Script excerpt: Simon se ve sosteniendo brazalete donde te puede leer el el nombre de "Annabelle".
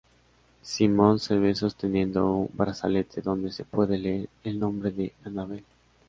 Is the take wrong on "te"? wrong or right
wrong